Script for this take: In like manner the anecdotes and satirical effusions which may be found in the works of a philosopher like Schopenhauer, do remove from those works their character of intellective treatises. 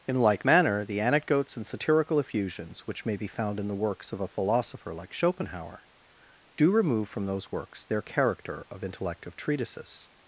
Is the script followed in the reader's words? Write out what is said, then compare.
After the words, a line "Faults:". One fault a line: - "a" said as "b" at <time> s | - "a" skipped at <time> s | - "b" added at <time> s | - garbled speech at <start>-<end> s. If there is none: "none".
In like manner the anecdotes and satirical effusions which may be found in the works of a philosopher like Schopenhauer, do remove from those works their character of intellective treatises.
Faults:
none